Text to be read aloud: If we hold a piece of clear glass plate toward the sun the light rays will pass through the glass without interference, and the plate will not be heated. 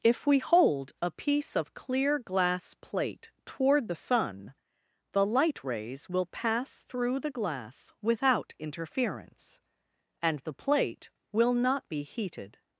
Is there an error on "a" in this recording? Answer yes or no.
no